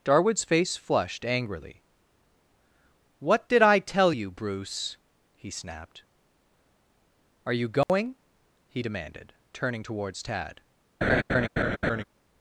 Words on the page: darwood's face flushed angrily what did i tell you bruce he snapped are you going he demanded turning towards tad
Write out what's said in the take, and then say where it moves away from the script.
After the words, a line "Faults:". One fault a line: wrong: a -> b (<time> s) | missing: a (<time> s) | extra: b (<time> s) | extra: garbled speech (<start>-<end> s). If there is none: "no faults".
darwood's face flushed angrily what did i tell you bruce he snapped are you going he demanded turning towards tad
Faults:
no faults